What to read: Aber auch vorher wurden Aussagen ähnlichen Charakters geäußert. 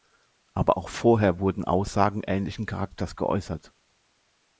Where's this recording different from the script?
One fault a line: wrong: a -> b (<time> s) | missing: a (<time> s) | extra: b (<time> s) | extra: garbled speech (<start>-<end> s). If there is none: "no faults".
no faults